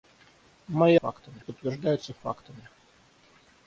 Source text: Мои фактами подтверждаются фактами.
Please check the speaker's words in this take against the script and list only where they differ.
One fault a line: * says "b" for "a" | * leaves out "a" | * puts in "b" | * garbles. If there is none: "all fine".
all fine